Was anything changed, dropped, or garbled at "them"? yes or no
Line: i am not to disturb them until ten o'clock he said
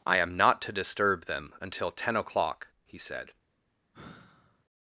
no